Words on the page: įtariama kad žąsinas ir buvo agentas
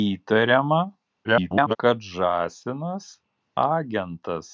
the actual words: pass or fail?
fail